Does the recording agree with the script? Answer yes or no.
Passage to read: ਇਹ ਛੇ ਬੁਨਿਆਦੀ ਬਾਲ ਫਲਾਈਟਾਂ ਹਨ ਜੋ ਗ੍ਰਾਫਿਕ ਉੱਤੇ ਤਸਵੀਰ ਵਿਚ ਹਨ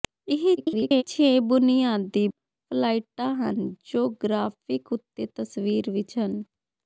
no